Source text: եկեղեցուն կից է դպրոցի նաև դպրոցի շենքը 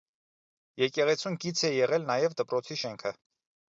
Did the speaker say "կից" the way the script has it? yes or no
yes